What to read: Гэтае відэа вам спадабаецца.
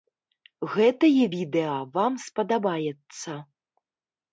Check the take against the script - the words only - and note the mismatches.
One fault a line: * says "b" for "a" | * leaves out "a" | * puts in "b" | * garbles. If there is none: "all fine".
all fine